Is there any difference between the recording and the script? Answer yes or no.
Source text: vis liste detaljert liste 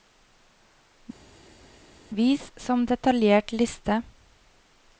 yes